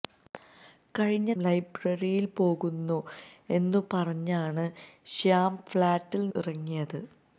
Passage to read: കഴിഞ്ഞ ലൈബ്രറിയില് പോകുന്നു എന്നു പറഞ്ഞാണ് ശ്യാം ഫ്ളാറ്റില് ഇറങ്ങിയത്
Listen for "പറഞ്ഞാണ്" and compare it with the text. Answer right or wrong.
right